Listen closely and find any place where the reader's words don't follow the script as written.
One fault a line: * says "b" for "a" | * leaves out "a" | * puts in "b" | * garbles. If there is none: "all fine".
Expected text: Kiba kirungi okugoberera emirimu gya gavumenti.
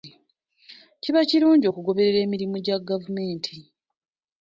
all fine